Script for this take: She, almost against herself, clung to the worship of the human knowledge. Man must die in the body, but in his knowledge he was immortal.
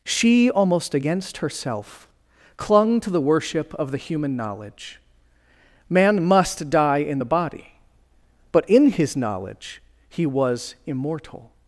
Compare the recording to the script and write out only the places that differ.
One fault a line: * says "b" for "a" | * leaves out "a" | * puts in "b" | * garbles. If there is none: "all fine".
all fine